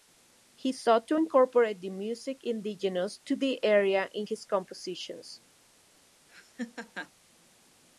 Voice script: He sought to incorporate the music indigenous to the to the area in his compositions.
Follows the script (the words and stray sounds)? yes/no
no